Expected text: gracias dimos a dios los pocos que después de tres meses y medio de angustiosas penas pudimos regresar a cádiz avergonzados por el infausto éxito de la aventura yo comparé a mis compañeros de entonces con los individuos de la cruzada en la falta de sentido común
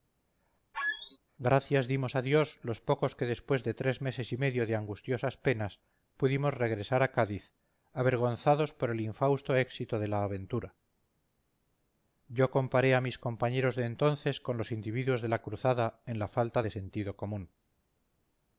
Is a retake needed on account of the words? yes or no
no